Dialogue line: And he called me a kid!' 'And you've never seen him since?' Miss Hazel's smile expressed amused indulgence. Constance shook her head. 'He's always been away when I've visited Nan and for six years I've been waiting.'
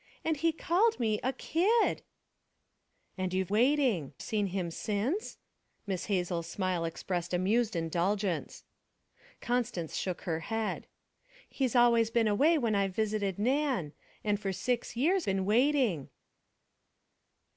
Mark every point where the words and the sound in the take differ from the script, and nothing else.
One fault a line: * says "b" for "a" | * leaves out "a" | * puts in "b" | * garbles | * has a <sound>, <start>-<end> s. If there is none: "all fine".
* says "waiting" for "never"
* leaves out "I've"